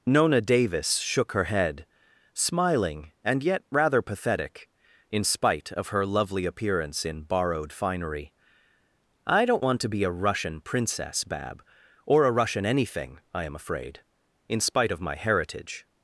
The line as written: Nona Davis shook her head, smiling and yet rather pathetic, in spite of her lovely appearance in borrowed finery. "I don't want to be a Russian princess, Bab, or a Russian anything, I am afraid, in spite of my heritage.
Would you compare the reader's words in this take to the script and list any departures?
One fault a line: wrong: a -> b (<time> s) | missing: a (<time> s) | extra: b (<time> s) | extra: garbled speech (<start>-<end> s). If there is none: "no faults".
no faults